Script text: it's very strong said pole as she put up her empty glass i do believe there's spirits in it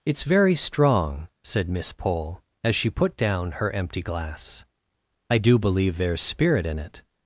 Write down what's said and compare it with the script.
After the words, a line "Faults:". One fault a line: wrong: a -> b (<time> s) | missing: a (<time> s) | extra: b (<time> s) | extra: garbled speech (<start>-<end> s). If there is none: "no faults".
it's very strong said miss pole as she put down her empty glass i do believe there's spirit in it
Faults:
extra: miss (1.7 s)
wrong: up -> down (3.1 s)
wrong: spirits -> spirit (6.2 s)